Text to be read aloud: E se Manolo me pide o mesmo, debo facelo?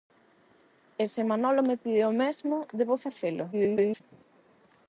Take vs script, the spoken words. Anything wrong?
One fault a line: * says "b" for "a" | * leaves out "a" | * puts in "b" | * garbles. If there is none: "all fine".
* garbles